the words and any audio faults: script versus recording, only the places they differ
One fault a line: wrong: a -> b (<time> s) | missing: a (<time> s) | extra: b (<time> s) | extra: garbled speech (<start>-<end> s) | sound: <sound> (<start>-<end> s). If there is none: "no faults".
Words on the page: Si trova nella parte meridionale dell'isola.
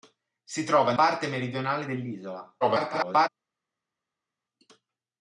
missing: nella (0.9 s)
extra: garbled speech (2.6-3.3 s)